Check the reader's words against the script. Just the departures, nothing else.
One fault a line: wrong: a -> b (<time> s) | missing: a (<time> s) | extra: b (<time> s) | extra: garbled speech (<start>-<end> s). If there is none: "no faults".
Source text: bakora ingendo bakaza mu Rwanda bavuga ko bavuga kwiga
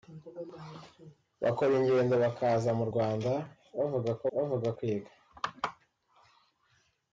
no faults